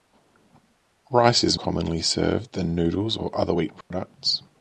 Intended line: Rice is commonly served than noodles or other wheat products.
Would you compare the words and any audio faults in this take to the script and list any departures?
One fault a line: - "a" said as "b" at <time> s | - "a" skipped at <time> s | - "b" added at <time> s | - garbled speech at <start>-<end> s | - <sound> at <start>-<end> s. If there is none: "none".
- dropout at 3.8-3.9 s